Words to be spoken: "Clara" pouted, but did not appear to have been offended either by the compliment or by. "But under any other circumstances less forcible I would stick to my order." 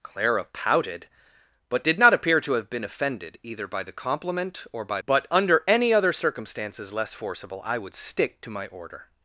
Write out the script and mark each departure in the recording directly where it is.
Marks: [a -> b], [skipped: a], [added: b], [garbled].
"Clara" pouted, but did not appear to have been offended either by the compliment or by. "But under any other circumstances less forcible I would stick to my order."